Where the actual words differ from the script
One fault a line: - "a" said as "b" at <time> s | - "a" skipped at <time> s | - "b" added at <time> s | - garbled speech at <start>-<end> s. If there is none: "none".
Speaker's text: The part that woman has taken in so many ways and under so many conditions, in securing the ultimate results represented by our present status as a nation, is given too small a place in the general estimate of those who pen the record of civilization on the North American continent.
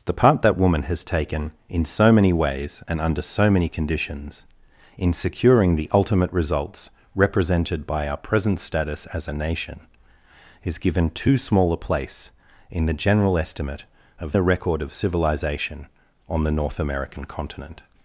- "those who pen" skipped at 14.3 s